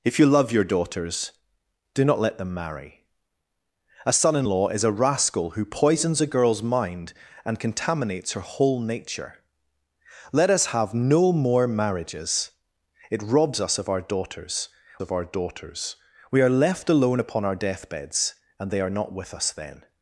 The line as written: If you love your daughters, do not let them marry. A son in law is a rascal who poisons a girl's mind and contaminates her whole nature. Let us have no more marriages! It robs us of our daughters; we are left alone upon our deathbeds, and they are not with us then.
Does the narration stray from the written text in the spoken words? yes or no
yes